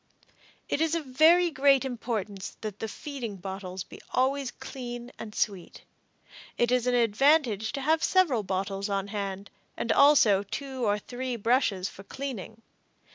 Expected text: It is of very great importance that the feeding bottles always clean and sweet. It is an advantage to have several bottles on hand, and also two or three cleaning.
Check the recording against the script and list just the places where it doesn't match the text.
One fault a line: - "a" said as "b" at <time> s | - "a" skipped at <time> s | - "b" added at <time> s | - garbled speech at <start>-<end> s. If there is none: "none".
- "be" added at 3.8 s
- "brushes for" added at 11.3 s